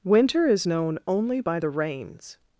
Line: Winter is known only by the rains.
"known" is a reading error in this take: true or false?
false